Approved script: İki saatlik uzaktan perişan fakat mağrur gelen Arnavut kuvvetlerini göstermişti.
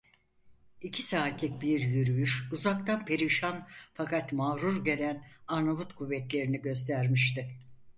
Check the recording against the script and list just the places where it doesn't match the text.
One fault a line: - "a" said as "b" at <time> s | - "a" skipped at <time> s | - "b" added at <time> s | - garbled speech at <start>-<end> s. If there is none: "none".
- "bir yürüyüş" added at 1.6 s